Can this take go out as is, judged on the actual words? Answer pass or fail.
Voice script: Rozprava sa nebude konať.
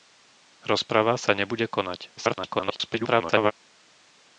fail